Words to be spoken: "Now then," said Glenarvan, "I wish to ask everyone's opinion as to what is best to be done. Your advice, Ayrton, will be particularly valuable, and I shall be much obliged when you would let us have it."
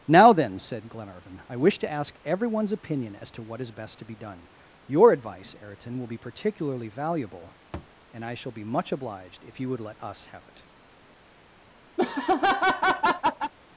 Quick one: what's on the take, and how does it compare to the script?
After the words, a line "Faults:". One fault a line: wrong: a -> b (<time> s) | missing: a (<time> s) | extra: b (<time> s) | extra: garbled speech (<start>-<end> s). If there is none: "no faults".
"Now then," said Glenarvan, "I wish to ask everyone's opinion as to what is best to be done. Your advice, Ayrton, will be particularly valuable, and I shall be much obliged if you would let us have it."
Faults:
wrong: when -> if (9.4 s)